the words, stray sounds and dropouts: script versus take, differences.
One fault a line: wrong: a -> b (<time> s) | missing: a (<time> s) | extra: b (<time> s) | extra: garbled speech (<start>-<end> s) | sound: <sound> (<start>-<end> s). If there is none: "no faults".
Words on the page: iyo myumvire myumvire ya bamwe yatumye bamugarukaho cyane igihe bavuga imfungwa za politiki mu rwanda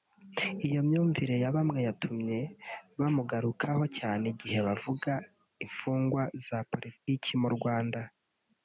missing: myumvire (1.4 s)
sound: dropout (7.0-7.1 s)